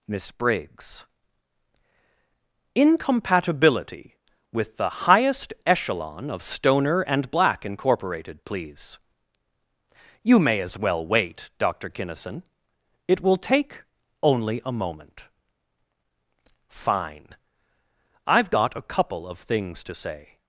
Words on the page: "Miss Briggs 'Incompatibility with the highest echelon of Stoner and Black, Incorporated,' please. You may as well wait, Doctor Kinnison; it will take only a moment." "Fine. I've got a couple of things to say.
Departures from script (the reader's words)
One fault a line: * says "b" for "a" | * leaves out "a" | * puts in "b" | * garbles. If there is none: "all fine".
all fine